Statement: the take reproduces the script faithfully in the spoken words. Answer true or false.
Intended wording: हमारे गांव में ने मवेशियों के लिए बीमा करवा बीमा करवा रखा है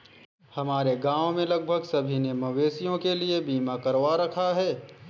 false